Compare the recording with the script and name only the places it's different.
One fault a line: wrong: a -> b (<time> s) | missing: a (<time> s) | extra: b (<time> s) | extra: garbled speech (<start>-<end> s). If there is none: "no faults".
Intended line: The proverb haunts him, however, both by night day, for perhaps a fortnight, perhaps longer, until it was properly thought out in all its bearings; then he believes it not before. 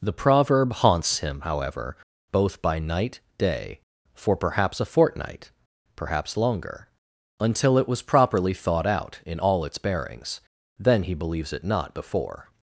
no faults